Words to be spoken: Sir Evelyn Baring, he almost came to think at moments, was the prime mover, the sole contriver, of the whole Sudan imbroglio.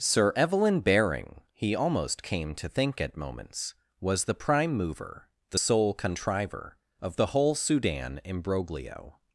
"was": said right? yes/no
yes